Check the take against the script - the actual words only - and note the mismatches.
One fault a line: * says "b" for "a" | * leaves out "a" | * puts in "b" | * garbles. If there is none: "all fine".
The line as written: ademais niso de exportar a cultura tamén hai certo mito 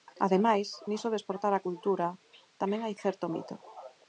all fine